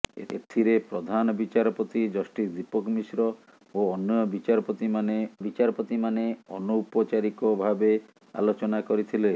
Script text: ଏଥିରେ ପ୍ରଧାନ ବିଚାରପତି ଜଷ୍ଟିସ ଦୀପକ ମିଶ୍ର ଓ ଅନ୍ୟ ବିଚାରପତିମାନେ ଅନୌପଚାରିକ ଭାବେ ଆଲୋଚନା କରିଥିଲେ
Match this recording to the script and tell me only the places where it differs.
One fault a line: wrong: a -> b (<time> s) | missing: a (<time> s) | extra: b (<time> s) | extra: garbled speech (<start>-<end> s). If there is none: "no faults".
extra: ବିଚାରପତିମାନେ (5.4 s)